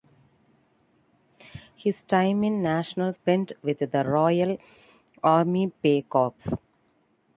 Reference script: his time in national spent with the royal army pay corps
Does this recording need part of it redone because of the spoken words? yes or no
no